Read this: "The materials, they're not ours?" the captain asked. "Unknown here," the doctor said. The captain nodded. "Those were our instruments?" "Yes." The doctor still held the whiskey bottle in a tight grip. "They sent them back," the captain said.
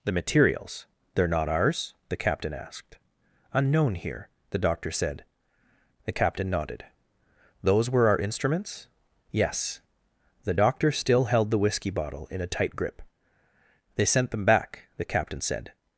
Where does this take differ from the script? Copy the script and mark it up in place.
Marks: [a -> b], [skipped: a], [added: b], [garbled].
"The materials, they're not ours?" the captain asked. "Unknown here," the doctor said. The captain nodded. "Those were our instruments?" "Yes." The doctor still held the whiskey bottle in a tight grip. "They sent them back," the captain said.